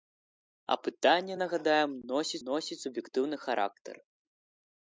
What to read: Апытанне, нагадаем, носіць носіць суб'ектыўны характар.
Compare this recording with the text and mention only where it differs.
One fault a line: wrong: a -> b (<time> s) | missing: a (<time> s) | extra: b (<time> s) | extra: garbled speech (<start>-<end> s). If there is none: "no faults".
no faults